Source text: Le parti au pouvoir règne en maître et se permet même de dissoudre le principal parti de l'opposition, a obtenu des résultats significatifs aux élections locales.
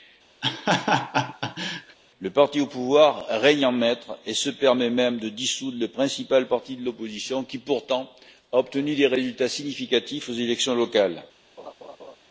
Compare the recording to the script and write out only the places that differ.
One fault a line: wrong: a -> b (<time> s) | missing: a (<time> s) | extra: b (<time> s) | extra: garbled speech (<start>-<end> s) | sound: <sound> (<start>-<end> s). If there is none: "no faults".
sound: laugh (0.4-2.0 s)
extra: qui pourtant (7.4 s)
sound: laugh (11.6-12.2 s)